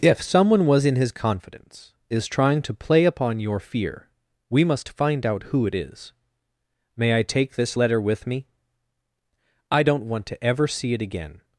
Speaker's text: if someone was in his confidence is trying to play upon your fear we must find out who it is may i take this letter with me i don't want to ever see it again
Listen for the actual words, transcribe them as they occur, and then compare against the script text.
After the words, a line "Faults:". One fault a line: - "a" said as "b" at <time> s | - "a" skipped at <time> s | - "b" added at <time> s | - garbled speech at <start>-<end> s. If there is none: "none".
if someone was in his confidence is trying to play upon your fear we must find out who it is may i take this letter with me i don't want to ever see it again
Faults:
none